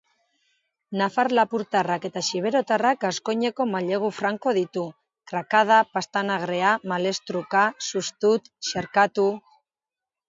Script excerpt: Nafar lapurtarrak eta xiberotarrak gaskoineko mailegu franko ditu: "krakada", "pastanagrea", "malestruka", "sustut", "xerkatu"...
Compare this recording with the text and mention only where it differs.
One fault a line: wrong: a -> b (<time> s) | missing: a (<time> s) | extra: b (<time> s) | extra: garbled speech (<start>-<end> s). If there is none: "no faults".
no faults